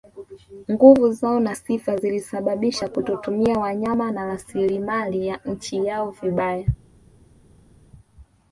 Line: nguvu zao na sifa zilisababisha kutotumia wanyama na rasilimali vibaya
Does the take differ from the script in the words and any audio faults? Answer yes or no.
yes